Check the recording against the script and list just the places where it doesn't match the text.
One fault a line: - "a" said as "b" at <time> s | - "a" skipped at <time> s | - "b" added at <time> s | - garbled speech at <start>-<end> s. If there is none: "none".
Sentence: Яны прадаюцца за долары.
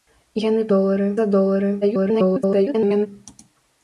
- "прадаюцца" said as "долары" at 0.7 s
- garbled speech at 1.8-3.1 s